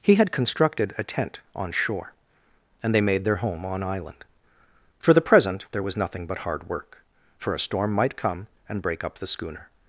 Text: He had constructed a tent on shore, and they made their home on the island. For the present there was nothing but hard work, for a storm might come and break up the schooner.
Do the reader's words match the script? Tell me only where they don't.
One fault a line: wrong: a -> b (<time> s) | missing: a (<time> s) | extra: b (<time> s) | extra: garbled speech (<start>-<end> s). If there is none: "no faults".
missing: the (3.8 s)